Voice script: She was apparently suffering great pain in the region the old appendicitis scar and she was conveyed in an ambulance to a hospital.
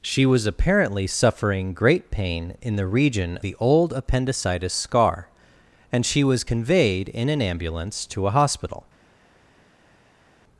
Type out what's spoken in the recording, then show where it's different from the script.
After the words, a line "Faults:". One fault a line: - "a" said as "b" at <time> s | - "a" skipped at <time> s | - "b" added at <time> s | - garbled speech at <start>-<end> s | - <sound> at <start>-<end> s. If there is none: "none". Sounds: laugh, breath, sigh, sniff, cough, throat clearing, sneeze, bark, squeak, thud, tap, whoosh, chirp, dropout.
She was apparently suffering great pain in the region the old appendicitis scar and she was conveyed in an ambulance to a hospital.
Faults:
none